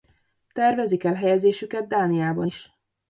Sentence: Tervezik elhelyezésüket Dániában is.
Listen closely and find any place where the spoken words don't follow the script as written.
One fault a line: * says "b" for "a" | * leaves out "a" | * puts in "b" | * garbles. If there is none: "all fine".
all fine